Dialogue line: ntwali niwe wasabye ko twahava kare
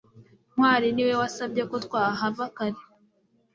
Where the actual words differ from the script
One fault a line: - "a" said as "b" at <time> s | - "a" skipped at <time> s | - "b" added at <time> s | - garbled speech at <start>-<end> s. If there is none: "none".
none